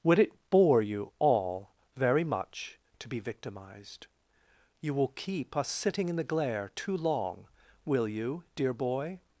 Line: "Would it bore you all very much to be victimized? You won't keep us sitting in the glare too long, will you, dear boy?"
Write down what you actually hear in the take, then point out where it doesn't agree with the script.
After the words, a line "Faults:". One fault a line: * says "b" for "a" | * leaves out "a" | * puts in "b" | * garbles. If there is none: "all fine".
"Would it bore you all very much to be victimized? You will keep us sitting in the glare too long, will you, dear boy?"
Faults:
* says "will" for "won't"